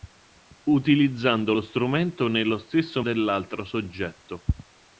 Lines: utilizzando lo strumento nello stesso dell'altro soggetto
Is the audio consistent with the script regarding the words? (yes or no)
yes